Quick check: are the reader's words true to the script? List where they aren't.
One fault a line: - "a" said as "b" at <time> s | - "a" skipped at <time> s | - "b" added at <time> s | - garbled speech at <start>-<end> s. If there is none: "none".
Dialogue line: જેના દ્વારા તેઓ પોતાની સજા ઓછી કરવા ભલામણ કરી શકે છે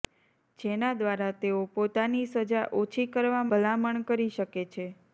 none